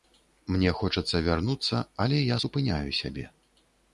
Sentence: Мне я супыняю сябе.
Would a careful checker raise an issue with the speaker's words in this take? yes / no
yes